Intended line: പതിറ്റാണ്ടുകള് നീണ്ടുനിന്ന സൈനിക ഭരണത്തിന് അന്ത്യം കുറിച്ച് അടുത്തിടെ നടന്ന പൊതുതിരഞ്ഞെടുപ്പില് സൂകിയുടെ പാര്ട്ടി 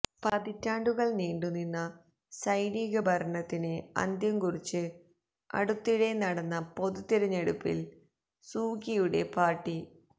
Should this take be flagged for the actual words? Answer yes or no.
no